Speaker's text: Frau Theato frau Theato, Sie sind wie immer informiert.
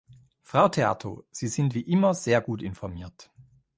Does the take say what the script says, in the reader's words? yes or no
no